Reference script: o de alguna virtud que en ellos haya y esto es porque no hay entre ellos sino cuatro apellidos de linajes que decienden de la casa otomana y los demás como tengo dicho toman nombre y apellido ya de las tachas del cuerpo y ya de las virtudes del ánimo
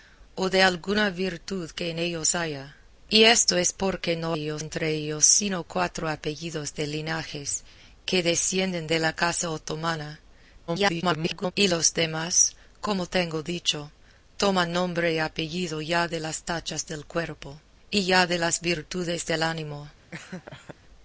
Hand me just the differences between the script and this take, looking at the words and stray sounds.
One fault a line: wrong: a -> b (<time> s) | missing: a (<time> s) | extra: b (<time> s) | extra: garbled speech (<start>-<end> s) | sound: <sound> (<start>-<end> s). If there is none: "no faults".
wrong: hay -> ellos (4.3 s)
extra: garbled speech (10.7-11.5 s)
sound: laugh (20.1-20.8 s)